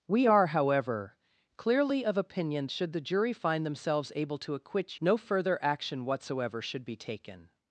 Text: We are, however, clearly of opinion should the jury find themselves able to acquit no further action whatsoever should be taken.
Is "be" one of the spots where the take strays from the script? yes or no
no